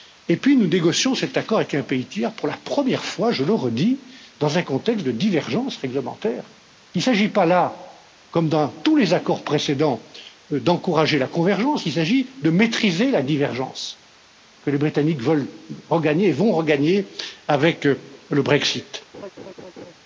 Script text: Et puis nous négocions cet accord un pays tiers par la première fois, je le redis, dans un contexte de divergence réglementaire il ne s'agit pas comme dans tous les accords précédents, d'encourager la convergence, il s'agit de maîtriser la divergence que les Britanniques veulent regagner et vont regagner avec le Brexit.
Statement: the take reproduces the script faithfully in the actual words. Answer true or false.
false